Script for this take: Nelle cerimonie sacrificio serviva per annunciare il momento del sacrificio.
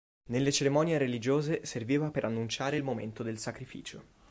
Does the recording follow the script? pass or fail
fail